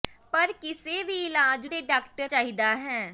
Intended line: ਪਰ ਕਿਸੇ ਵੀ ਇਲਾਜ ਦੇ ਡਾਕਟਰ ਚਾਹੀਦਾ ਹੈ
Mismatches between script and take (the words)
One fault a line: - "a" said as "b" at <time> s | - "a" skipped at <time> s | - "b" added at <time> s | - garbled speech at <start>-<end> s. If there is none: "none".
none